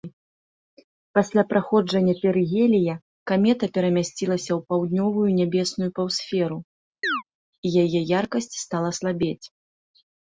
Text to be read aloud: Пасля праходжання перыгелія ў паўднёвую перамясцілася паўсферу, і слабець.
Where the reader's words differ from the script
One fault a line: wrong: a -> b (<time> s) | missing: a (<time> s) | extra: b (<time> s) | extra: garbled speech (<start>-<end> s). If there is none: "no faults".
extra: камета перамясцілася (3.3 s)
wrong: перамясцілася -> нябесную (5.4 s)
extra: яе яркасць стала (7.8 s)